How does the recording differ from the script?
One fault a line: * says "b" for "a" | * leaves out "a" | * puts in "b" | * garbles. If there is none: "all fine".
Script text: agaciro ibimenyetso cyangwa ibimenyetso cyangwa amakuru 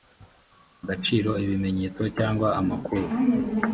* leaves out "ibimenyetso cyangwa"